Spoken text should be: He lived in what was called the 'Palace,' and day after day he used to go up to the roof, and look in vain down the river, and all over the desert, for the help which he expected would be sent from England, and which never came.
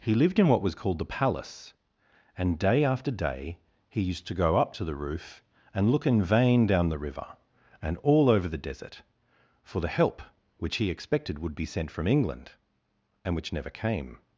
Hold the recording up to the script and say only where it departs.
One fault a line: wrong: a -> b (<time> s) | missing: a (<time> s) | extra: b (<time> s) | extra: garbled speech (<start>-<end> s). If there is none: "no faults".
no faults